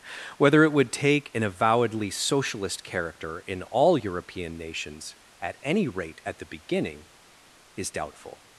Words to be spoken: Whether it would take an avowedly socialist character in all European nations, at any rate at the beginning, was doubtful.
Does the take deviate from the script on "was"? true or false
true